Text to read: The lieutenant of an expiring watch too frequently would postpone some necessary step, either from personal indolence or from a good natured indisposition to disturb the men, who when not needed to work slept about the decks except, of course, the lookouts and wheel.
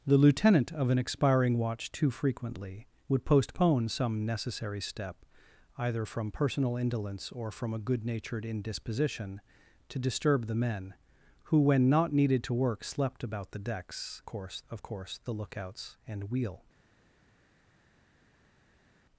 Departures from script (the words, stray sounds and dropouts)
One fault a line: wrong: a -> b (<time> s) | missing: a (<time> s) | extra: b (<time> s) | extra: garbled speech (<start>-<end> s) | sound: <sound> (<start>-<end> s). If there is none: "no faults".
wrong: except -> course (14.3 s)